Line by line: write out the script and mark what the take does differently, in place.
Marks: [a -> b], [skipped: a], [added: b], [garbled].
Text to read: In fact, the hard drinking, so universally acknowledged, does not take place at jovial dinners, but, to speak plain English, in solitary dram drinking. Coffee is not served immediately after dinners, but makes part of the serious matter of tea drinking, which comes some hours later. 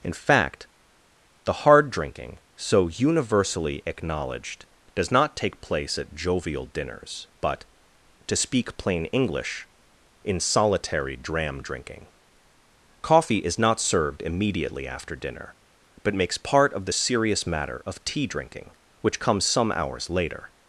In fact, the hard drinking, so universally acknowledged, does not take place at jovial dinners, but, to speak plain English, in solitary dram drinking. Coffee is not served immediately after [dinners, -> dinner] but makes part of the serious matter of tea drinking, which comes some hours later.